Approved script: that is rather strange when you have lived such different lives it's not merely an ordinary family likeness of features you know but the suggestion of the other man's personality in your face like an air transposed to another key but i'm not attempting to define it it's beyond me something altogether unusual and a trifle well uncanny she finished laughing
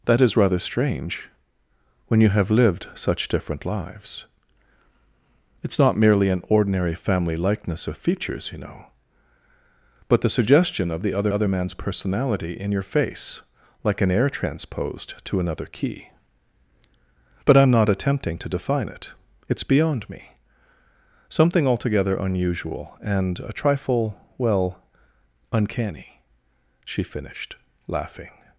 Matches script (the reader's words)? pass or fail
fail